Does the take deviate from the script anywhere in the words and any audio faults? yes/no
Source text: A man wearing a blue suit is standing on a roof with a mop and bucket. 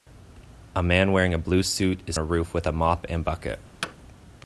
yes